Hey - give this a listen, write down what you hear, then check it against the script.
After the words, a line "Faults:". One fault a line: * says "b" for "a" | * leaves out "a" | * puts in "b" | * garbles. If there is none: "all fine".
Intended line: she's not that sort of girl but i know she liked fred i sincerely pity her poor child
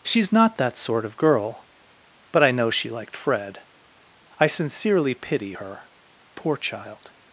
she's not that sort of girl but i know she liked fred i sincerely pity her poor child
Faults:
all fine